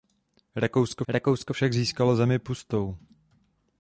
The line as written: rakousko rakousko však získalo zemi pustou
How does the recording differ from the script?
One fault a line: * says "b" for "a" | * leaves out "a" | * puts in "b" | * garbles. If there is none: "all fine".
all fine